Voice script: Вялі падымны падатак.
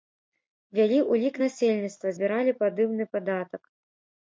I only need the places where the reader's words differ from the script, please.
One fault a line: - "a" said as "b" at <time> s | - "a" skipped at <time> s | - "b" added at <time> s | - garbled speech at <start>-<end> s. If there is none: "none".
- "ўлік насельніцтва збіралі" added at 1.1 s